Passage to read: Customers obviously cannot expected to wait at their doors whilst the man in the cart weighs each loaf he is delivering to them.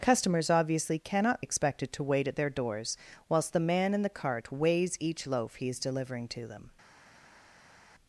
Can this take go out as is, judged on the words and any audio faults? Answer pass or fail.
pass